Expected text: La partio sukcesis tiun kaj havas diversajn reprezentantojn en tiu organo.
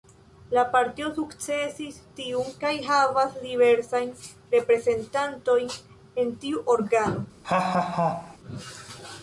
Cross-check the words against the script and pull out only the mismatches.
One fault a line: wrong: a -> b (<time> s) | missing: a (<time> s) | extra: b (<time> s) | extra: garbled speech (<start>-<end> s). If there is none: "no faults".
no faults